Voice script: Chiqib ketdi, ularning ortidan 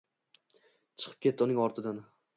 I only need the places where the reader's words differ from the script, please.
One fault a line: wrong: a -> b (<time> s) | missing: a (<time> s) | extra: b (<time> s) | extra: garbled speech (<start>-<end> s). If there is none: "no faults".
wrong: ularning -> uning (1.5 s)